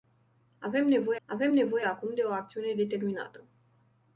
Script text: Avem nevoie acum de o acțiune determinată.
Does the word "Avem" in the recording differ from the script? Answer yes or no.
no